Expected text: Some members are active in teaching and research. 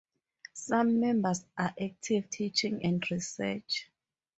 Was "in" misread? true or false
true